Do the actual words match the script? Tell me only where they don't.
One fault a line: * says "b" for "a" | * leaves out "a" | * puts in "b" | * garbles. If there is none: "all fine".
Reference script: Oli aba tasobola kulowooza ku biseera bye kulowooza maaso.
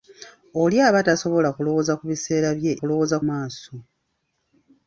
all fine